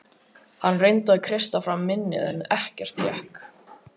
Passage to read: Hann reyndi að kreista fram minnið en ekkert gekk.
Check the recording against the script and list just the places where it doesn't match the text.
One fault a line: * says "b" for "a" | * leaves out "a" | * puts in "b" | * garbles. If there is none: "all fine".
all fine